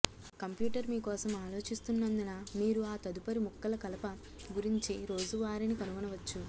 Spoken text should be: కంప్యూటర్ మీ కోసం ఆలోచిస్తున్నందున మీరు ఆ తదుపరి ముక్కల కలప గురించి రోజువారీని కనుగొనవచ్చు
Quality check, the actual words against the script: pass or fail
pass